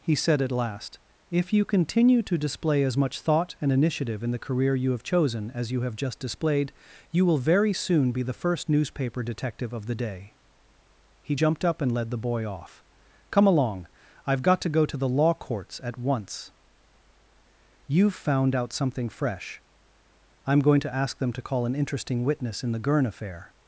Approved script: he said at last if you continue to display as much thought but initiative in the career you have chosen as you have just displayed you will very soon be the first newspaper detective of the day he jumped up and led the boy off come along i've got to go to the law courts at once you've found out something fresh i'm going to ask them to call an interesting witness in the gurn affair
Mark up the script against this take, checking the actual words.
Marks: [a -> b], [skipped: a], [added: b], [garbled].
he said at last if you continue to display as much thought [but -> and] initiative in the career you have chosen as you have just displayed you will very soon be the first newspaper detective of the day he jumped up and led the boy off come along i've got to go to the law courts at once you've found out something fresh i'm going to ask them to call an interesting witness in the gurn affair